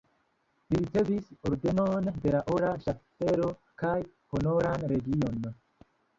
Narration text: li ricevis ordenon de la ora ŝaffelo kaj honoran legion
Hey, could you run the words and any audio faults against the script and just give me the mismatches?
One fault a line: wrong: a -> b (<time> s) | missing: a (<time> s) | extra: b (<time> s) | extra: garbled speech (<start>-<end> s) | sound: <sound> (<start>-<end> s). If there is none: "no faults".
no faults